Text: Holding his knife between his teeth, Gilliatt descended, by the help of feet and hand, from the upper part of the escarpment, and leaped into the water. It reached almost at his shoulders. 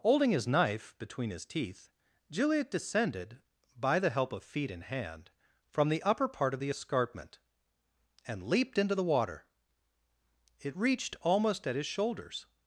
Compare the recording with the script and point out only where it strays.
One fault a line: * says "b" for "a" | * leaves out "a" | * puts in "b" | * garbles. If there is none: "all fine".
all fine